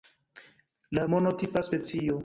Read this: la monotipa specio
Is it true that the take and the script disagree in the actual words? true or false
false